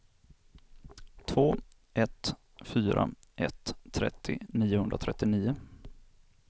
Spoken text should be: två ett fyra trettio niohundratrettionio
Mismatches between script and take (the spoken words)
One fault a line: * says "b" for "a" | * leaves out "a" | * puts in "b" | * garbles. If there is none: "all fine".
* puts in "ett"